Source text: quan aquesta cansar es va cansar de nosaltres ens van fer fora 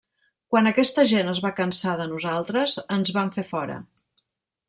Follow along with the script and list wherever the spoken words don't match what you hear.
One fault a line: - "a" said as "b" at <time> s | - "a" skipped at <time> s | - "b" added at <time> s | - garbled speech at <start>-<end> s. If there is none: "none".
- "cansar" said as "gent" at 1.1 s